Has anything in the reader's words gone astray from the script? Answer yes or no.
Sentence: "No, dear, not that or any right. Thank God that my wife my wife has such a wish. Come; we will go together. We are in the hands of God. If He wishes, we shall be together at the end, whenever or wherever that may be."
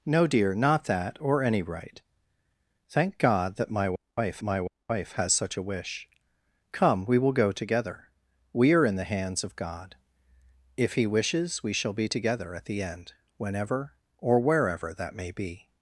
no